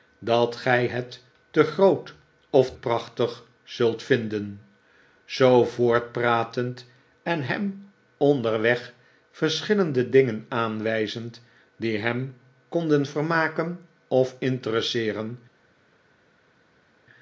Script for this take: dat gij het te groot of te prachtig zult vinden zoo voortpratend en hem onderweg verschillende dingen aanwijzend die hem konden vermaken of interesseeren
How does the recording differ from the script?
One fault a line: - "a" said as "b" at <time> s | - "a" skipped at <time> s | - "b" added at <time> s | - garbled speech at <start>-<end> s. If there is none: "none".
- "te" skipped at 2.7 s